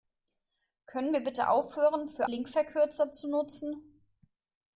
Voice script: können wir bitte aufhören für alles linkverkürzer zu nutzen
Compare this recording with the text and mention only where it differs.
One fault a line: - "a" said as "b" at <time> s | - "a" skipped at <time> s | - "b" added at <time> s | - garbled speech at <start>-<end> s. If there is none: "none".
- "alles" skipped at 2.3 s